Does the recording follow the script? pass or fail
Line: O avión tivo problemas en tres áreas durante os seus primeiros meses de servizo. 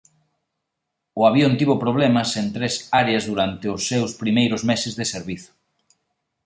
pass